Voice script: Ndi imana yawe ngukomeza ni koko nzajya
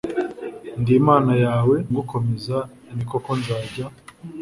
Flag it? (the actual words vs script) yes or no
no